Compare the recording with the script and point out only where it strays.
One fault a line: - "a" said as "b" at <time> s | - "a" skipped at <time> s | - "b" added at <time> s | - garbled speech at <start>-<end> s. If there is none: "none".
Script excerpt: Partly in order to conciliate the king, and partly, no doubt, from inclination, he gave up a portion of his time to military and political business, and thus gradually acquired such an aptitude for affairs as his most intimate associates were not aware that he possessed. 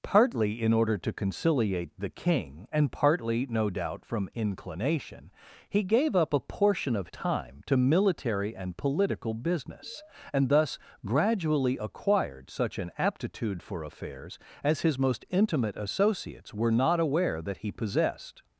- "his" skipped at 7.1 s